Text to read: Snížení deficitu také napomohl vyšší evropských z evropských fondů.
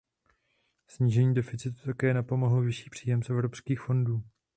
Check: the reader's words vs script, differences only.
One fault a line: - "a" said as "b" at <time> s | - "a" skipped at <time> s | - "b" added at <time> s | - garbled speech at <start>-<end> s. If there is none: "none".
- "evropských" said as "příjem" at 2.9 s